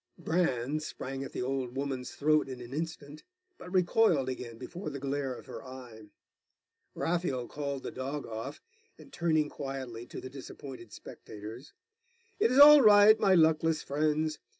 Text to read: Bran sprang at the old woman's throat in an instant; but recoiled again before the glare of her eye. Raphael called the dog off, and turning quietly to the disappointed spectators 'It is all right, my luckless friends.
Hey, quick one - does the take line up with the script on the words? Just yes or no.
yes